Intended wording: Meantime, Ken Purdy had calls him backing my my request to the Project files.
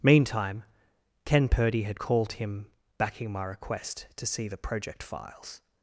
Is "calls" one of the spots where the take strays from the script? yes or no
yes